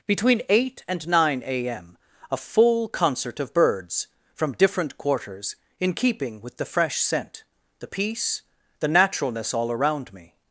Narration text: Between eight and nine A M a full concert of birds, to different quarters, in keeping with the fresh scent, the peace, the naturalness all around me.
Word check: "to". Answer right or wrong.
wrong